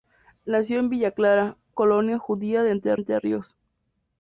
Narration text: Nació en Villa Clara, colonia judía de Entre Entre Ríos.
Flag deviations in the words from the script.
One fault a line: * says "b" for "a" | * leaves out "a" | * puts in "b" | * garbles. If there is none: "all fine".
all fine